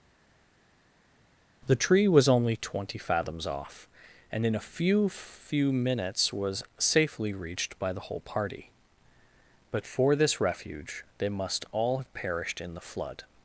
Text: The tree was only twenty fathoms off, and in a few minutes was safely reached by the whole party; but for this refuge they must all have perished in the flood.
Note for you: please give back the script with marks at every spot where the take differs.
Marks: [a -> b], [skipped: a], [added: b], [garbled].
The tree was only twenty fathoms off, and in a few [added: few] minutes was safely reached by the whole party; but for this refuge they must all have perished in the flood.